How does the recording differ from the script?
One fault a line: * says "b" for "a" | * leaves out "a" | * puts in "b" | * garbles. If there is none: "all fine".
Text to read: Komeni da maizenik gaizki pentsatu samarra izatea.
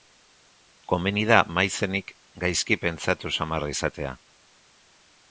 all fine